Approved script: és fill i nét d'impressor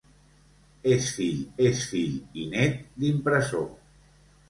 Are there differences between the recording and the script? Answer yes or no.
yes